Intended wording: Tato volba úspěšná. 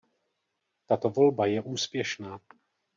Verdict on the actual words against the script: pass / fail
fail